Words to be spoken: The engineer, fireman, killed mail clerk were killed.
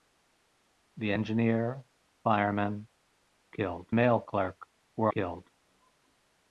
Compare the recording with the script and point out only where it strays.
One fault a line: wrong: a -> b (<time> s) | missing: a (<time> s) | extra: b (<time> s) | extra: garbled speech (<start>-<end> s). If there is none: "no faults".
no faults